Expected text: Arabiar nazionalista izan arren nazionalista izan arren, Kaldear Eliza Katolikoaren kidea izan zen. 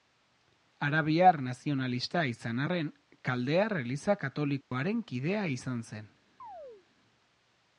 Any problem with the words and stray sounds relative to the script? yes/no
yes